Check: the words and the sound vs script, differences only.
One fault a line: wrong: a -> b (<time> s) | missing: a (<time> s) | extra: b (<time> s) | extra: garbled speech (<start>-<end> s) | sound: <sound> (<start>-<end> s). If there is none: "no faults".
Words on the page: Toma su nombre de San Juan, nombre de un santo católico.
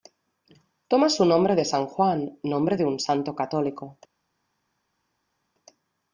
no faults